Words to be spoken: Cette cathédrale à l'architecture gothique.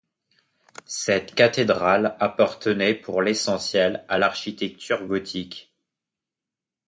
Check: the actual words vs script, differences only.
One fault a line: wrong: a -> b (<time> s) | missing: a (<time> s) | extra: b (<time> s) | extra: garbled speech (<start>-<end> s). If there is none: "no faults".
extra: appartenait pour l'essentiel (2.2 s)